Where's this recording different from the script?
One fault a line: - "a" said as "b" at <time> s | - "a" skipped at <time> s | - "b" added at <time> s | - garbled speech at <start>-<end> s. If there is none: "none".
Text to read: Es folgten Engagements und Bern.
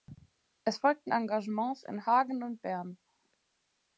- "in Hagen" added at 1.8 s